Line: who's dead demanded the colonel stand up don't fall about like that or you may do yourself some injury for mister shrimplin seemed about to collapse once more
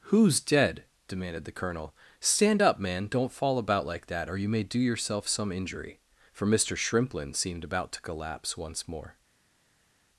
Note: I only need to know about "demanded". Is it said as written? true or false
true